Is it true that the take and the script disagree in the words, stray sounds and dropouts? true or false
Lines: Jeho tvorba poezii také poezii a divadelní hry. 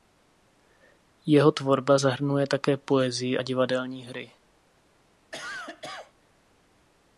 true